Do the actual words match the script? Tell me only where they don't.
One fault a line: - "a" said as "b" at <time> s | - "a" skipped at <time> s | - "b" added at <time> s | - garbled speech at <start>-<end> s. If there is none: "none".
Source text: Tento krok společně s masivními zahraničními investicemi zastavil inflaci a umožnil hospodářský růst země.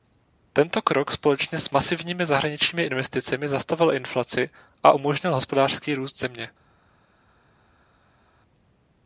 none